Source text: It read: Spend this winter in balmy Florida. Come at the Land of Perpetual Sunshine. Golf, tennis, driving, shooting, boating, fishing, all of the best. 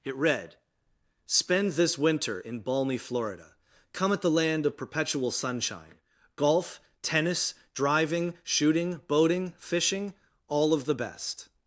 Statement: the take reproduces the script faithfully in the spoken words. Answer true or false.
true